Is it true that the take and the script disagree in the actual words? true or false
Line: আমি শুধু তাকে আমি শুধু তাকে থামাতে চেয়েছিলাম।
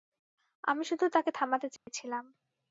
true